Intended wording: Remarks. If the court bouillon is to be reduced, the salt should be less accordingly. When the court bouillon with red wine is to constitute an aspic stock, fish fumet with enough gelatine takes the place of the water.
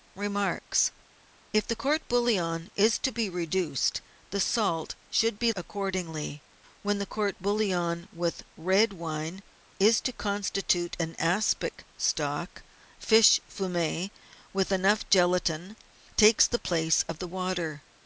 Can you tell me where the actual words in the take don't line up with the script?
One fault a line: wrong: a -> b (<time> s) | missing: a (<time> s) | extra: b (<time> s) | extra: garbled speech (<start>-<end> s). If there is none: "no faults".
missing: less (5.5 s)